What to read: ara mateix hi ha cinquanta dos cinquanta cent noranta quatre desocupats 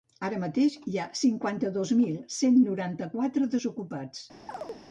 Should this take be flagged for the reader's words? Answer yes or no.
yes